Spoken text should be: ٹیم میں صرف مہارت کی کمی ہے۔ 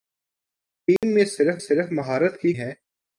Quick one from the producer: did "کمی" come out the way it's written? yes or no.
no